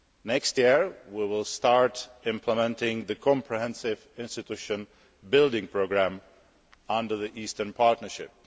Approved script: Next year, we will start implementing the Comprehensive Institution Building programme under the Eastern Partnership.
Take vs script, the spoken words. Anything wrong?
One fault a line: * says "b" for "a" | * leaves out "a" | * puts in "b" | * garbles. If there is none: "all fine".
all fine